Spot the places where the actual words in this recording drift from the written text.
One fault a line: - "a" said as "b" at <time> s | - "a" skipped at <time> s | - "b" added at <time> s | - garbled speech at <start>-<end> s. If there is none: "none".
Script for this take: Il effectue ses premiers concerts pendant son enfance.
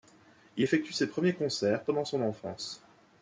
none